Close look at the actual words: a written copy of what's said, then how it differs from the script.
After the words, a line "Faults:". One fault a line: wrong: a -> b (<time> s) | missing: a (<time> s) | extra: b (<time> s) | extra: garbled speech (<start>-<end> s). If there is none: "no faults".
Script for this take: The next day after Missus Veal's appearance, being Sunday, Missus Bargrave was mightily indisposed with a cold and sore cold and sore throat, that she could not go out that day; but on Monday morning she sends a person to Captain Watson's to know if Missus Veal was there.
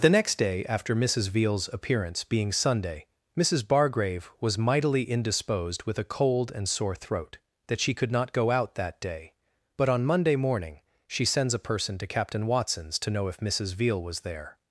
The next day after Missus Veal's appearance, being Sunday, Missus Bargrave was mightily indisposed with a cold and sore throat, that she could not go out that day; but on Monday morning she sends a person to Captain Watson's to know if Missus Veal was there.
Faults:
missing: cold and sore (7.0 s)